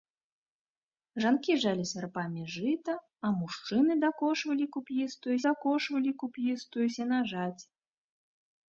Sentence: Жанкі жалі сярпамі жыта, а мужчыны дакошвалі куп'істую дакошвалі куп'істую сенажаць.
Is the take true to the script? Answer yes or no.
yes